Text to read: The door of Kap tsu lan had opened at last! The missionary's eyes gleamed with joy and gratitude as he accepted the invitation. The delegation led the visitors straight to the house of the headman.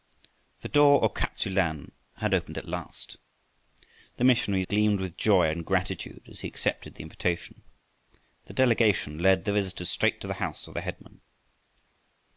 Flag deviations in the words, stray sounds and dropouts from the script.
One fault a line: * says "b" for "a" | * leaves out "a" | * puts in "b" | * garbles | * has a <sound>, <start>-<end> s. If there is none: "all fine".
* leaves out "eyes"